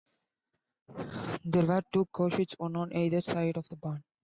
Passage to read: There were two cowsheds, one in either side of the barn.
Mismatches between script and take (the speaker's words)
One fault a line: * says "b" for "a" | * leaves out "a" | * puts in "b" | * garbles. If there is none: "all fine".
* says "on" for "in"